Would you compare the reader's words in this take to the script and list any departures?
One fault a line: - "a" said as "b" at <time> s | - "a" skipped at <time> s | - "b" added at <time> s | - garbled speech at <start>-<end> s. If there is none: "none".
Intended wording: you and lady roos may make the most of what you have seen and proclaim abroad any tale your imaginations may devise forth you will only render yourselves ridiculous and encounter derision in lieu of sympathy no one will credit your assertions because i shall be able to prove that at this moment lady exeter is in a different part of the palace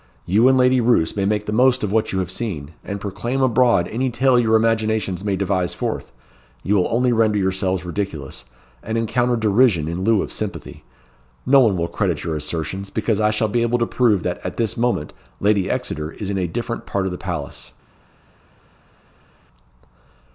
none